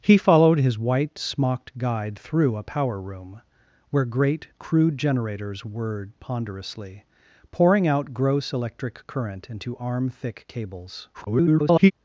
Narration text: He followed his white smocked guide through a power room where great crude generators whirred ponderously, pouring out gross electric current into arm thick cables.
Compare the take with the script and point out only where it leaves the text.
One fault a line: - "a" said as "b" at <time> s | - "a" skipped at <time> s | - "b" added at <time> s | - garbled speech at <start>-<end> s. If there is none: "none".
- garbled speech at 11.1-11.9 s